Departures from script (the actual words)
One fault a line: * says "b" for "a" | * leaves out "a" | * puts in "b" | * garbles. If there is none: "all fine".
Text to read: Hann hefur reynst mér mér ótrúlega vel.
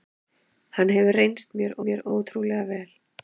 all fine